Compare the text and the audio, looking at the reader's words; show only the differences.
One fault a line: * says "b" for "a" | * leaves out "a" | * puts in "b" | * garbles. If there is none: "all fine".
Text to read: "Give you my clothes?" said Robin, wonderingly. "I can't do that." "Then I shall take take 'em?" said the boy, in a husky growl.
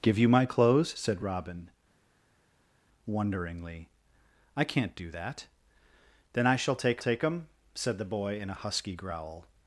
all fine